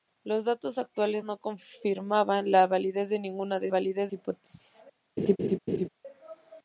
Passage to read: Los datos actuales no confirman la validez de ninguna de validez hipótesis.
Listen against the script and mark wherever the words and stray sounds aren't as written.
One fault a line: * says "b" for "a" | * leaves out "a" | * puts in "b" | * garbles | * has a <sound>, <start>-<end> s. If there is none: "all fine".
* has a laugh, 5.2-5.9 s